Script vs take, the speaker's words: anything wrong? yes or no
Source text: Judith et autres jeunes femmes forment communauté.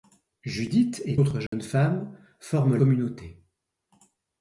no